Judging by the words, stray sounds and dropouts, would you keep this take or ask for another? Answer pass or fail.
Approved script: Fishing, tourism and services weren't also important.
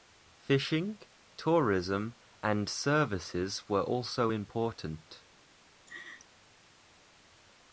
fail